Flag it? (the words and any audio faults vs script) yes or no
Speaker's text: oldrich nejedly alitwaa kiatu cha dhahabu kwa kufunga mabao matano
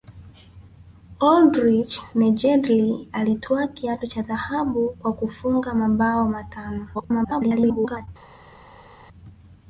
yes